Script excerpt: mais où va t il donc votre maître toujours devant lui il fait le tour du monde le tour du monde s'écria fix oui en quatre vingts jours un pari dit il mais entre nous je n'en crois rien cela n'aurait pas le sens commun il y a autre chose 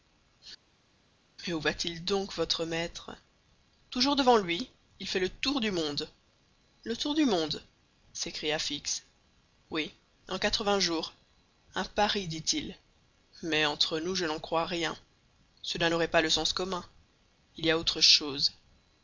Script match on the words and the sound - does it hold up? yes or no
yes